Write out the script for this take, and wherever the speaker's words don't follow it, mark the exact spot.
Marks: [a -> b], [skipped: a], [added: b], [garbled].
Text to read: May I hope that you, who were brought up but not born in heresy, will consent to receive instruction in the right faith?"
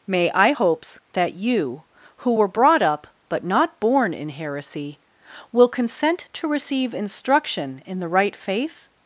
May I [hope -> hopes] that you, who were brought up but not born in heresy, will consent to receive instruction in the right faith?"